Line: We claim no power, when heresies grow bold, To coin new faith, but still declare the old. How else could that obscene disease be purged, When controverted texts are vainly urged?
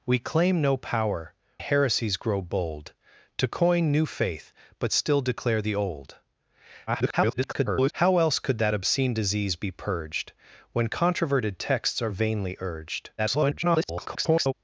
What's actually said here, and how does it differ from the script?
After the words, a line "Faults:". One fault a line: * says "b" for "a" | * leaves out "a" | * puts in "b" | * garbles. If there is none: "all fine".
We claim no power, heresies grow bold, To coin new faith, but still declare the old. [garbled] How else could that obscene disease be purged, When controverted texts are vainly urged? [garbled]
Faults:
* leaves out "when"
* garbles
* garbles